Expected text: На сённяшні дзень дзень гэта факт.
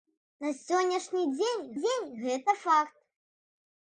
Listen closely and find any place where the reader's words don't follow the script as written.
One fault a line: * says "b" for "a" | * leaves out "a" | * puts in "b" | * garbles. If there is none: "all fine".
all fine